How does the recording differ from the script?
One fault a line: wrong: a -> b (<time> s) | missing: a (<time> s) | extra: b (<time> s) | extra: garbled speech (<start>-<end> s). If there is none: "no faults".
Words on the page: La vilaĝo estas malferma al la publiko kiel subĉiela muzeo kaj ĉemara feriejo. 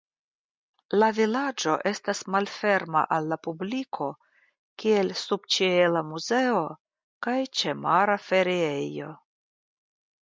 no faults